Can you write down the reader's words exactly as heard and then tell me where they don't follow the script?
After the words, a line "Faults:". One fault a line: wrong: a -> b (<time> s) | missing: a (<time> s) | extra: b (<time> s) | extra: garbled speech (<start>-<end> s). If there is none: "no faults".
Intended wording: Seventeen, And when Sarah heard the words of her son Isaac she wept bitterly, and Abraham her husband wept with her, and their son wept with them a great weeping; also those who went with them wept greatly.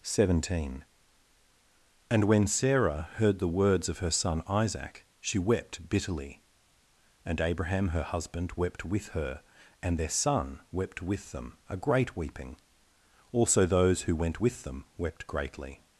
Seventeen, And when Sarah heard the words of her son Isaac she wept bitterly, and Abraham her husband wept with her, and their son wept with them a great weeping; also those who went with them wept greatly.
Faults:
no faults